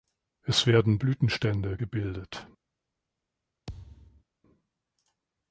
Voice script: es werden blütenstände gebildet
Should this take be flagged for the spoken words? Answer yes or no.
no